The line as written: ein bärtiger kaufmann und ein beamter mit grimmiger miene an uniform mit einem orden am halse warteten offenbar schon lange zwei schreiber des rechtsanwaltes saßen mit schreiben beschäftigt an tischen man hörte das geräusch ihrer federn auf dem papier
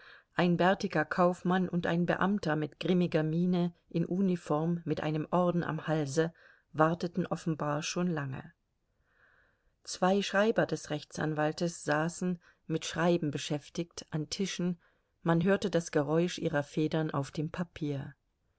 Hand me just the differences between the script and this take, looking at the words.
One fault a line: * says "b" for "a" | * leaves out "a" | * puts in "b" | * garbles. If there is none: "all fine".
* says "in" for "an"